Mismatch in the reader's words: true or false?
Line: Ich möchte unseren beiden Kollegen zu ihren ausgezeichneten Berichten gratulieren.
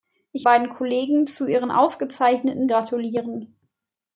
true